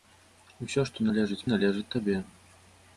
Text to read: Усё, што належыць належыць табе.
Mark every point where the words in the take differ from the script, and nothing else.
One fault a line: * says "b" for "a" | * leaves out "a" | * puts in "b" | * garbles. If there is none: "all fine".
all fine